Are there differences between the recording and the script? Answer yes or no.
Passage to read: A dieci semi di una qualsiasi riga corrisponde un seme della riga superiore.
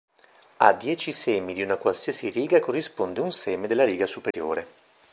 no